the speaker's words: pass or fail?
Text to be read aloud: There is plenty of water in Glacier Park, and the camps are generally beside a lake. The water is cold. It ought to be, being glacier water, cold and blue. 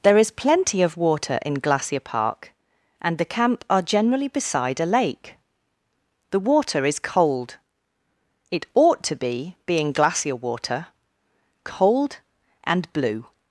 fail